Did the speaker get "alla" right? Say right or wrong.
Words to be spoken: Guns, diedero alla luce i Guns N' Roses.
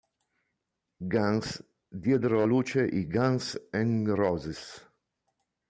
wrong